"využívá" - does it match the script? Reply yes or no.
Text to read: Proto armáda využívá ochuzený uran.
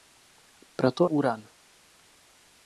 no